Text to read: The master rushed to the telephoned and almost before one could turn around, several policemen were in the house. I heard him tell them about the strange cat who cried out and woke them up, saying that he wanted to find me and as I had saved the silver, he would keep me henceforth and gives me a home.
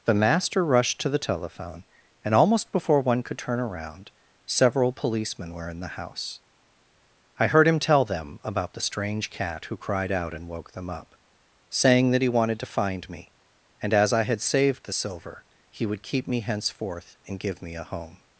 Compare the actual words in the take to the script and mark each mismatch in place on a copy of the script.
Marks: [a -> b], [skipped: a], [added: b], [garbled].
The master rushed to the [telephoned -> telephone] and almost before one could turn around, several policemen were in the house. I heard him tell them about the strange cat who cried out and woke them up, saying that he wanted to find me and as I had saved the silver, he would keep me henceforth and [gives -> give] me a home.